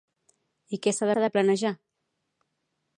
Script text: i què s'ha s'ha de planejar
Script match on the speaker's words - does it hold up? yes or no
yes